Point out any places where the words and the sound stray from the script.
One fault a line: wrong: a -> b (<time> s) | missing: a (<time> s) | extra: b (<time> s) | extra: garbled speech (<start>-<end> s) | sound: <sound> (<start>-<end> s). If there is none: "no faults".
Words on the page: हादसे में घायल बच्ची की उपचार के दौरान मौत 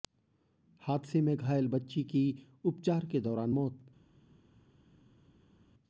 no faults